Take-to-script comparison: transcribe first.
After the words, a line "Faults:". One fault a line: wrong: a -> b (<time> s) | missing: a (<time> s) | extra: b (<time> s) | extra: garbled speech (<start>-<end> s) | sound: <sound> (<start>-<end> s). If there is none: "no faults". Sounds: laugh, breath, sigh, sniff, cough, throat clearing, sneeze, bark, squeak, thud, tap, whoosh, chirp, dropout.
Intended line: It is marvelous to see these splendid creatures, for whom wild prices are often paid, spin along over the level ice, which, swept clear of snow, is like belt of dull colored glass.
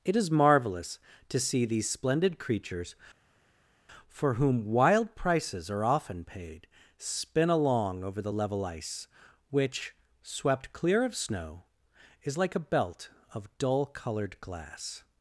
It is marvelous to see these splendid creatures, for whom wild prices are often paid, spin along over the level ice, which, swept clear of snow, is like a belt of dull colored glass.
Faults:
extra: a (12.5 s)